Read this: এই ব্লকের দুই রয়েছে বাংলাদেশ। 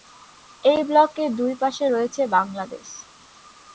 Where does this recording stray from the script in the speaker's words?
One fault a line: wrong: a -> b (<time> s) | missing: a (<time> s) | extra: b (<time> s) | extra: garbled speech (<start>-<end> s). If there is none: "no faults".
extra: পাশে (1.6 s)